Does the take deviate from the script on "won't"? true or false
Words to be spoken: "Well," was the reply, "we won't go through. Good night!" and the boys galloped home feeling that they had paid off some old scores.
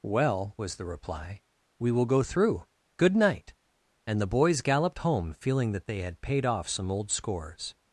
true